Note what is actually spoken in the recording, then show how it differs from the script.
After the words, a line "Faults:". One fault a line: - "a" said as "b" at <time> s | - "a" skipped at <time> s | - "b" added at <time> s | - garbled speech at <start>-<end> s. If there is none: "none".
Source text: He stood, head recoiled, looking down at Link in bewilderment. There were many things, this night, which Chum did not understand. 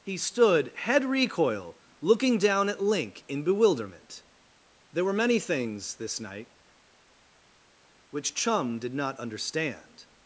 He stood, head recoil, looking down at Link in bewilderment. There were many things, this night, which Chum did not understand.
Faults:
- "recoiled" said as "recoil" at 1.1 s